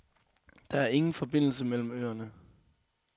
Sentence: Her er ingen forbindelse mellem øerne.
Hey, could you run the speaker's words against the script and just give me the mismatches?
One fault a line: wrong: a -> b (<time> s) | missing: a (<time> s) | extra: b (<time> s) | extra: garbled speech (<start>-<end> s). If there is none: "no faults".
wrong: Her -> Der (0.7 s)